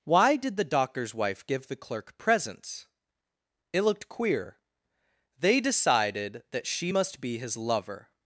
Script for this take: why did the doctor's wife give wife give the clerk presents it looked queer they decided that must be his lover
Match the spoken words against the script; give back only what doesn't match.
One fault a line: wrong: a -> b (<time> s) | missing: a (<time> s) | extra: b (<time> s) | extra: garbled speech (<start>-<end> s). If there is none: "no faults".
missing: wife give (1.7 s)
extra: she (6.7 s)